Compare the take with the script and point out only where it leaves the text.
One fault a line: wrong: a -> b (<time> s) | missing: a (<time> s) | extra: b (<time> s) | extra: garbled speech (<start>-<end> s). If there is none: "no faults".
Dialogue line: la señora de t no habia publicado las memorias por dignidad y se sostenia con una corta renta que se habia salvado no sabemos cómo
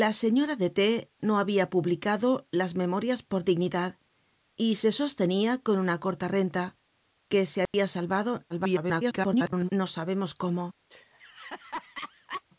extra: garbled speech (8.5-9.7 s)